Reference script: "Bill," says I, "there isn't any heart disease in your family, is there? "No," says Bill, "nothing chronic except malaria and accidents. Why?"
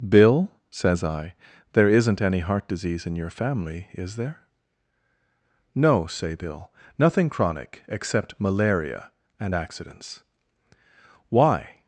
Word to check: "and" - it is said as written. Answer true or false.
true